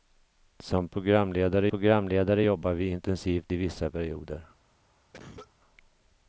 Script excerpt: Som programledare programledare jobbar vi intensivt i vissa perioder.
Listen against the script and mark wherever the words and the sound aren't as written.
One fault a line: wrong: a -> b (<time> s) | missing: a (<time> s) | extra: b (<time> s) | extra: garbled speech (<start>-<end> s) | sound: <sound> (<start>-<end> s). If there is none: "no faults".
sound: cough (5.1-5.5 s)